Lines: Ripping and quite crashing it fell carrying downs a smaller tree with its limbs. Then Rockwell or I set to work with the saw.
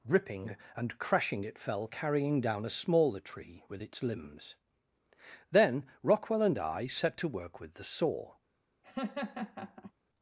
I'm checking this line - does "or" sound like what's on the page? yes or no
no